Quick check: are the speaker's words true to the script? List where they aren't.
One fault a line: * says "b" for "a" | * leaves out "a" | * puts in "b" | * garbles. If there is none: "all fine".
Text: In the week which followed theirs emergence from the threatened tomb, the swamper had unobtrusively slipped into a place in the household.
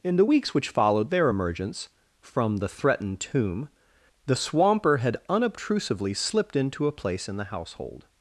* says "weeks" for "week"
* says "their" for "theirs"